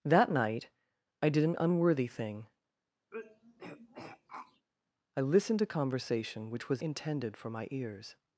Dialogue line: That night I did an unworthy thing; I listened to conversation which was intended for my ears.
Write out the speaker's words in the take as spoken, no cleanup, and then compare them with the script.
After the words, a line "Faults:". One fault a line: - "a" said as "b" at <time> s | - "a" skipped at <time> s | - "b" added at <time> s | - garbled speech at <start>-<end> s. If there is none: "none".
That night I did an unworthy thing; I listened to conversation which was intended for my ears.
Faults:
none